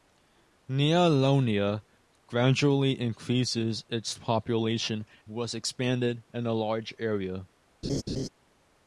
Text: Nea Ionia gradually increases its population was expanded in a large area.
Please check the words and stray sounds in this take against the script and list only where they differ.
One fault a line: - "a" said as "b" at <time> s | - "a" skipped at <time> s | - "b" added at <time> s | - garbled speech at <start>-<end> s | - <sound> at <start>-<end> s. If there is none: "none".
- laugh at 7.8-8.3 s